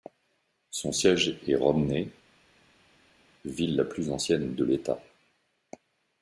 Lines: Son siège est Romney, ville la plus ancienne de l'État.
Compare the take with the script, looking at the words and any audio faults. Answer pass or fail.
pass